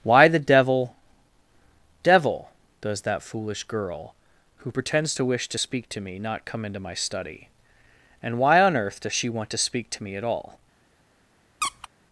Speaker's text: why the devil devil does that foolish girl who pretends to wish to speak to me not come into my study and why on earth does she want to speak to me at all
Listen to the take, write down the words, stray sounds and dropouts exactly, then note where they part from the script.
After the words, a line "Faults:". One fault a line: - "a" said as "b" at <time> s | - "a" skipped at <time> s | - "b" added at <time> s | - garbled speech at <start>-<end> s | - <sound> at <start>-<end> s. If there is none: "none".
why the devil devil does that foolish girl who pretends to wish to speak to me not come into my study and why on earth does she want to speak to me at all
Faults:
- squeak at 11.6-11.9 s